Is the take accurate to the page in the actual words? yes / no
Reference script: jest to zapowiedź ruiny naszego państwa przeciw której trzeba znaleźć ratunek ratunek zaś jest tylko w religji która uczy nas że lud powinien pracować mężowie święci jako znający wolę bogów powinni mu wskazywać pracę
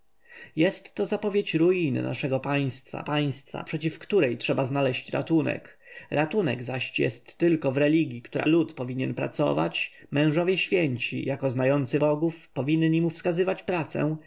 no